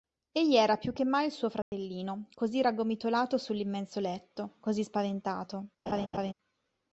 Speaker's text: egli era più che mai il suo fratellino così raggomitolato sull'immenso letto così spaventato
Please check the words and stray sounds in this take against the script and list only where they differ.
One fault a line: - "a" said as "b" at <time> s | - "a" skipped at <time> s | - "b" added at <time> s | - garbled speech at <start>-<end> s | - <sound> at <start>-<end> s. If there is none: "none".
- dropout at 1.6-1.7 s
- laugh at 5.9-6.3 s